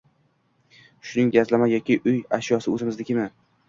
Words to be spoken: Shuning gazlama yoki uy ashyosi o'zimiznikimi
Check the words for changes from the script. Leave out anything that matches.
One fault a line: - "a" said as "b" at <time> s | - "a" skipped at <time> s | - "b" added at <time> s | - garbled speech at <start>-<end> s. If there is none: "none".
none